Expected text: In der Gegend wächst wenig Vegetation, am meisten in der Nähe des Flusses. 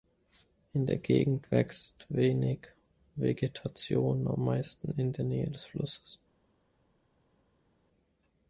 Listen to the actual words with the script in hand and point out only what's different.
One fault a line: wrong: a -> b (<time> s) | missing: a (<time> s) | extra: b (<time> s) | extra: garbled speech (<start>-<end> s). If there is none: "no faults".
no faults